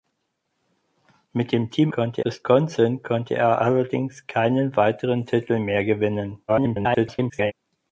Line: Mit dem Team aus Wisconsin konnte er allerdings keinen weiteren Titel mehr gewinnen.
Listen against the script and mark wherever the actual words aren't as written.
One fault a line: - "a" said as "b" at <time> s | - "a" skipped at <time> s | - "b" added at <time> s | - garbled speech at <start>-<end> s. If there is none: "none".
- "aus" said as "konnte" at 1.9 s
- garbled speech at 6.5-7.5 s